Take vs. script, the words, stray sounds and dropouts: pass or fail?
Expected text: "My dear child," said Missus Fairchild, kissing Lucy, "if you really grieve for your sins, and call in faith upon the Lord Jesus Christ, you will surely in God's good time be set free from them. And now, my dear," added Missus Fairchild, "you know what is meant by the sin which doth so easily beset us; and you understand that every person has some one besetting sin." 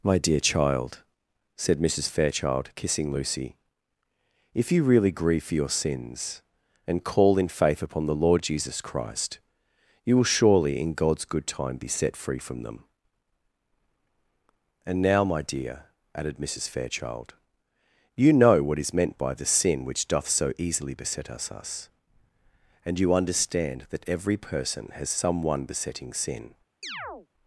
fail